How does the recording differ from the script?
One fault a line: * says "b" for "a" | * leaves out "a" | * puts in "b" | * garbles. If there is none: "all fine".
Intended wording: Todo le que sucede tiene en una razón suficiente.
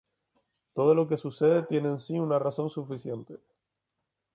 * says "lo" for "le"
* puts in "sí"